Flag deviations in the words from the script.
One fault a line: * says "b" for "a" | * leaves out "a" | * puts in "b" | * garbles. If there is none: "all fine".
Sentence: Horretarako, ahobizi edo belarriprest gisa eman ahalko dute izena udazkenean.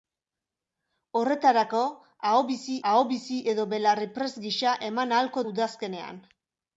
* puts in "ahobizi"
* leaves out "dute izena"